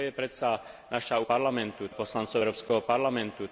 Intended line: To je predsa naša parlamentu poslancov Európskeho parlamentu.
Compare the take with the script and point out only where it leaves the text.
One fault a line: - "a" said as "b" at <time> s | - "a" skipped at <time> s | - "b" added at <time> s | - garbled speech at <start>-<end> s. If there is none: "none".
none